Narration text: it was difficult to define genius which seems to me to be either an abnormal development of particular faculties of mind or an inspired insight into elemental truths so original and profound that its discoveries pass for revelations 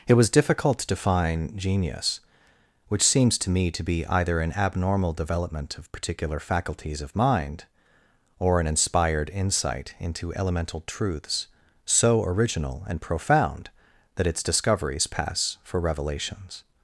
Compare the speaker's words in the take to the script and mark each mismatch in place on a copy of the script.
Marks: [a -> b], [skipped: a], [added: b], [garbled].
it was difficult to define genius which seems to me to be either an abnormal development of particular faculties of mind or an inspired insight into elemental truths so original and profound that its discoveries pass for revelations